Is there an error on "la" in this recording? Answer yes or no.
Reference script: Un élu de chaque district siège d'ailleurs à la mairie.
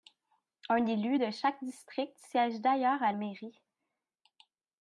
yes